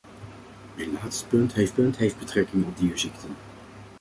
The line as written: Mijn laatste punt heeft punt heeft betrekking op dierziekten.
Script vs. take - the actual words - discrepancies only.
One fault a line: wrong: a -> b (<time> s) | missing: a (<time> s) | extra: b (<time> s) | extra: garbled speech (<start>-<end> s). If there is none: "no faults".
no faults